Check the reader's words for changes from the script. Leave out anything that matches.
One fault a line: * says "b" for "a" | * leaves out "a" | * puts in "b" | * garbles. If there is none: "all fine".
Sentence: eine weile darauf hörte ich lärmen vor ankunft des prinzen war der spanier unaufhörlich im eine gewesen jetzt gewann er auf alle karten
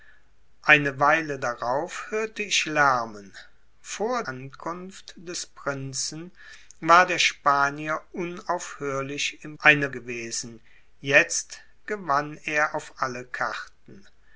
all fine